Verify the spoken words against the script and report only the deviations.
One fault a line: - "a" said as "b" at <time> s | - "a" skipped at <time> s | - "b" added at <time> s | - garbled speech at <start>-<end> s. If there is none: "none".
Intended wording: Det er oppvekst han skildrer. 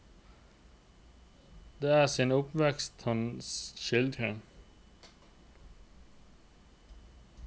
- "sin" added at 2.1 s